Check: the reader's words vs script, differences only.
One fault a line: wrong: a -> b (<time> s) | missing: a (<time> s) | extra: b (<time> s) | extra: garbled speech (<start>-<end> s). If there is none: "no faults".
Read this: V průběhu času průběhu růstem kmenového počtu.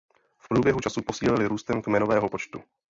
wrong: průběhu -> posílili (1.0 s)